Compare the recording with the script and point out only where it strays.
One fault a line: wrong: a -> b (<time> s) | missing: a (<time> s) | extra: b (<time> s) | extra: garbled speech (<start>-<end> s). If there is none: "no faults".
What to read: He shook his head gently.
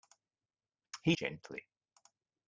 missing: shook his head (1.1 s)